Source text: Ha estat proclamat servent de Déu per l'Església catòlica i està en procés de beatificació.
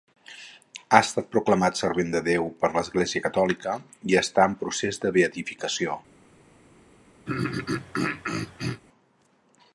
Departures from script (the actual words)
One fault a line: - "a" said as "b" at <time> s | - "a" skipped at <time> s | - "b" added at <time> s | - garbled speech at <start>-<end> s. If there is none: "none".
none